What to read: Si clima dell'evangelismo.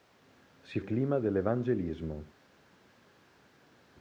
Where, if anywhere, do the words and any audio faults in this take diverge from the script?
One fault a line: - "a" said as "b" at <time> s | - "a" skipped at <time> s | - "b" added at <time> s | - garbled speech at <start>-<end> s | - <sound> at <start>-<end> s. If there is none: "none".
none